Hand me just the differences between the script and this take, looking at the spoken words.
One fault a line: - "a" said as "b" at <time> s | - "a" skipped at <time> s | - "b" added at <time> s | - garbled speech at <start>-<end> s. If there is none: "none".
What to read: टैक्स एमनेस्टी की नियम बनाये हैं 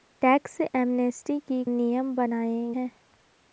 none